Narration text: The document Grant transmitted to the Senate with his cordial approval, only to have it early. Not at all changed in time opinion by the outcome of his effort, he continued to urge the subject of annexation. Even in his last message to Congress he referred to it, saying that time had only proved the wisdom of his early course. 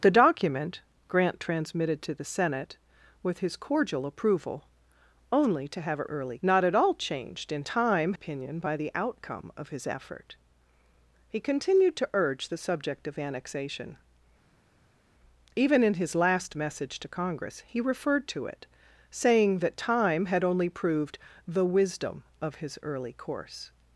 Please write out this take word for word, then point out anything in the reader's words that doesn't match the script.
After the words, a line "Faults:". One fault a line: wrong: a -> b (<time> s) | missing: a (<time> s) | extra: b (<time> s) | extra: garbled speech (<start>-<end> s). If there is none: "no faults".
The document Grant transmitted to the Senate with his cordial approval, only to have it early. Not at all changed in time opinion by the outcome of his effort, he continued to urge the subject of annexation. Even in his last message to Congress he referred to it, saying that time had only proved the wisdom of his early course.
Faults:
no faults